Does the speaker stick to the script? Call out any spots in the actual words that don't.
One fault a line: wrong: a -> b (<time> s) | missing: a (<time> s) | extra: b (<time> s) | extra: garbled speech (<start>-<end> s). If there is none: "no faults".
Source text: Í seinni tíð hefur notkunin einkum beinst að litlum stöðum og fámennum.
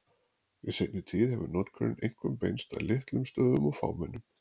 no faults